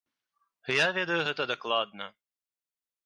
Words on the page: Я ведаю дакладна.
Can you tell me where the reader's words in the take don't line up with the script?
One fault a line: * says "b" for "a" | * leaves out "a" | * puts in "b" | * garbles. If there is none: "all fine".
* puts in "гэта"